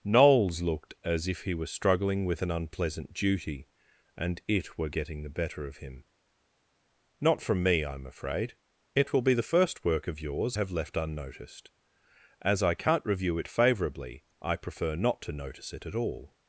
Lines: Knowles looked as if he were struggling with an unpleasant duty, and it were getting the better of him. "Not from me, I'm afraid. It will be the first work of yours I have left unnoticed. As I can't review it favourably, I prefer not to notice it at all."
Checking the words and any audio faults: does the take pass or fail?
fail